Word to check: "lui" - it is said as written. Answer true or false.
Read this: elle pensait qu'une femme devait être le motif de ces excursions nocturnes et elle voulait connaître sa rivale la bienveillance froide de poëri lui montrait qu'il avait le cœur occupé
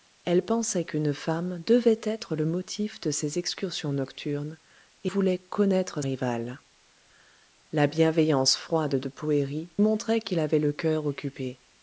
false